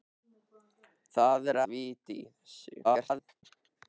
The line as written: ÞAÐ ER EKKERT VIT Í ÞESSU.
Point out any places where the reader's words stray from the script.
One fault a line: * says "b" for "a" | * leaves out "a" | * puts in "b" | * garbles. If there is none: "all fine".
* leaves out "EKKERT"
* garbles